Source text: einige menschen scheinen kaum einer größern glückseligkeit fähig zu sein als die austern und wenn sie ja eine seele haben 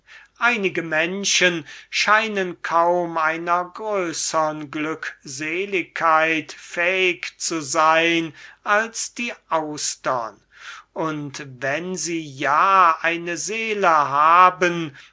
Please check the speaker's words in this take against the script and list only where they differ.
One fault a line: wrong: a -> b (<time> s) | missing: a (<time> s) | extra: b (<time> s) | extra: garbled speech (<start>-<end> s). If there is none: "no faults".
no faults